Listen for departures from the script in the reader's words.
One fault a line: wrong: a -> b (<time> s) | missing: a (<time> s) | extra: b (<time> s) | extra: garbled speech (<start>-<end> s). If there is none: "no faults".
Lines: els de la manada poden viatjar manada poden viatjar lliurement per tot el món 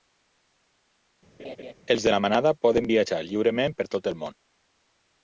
missing: manada poden viatjar (3.2 s)